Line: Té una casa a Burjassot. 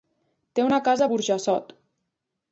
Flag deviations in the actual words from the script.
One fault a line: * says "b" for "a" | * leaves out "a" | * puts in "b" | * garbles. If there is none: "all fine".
all fine